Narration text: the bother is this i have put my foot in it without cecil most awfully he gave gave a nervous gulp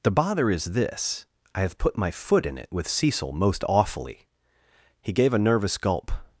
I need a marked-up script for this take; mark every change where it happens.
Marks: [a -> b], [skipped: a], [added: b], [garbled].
the bother is this i have put my foot in it [without -> with] cecil most awfully he gave [skipped: gave] a nervous gulp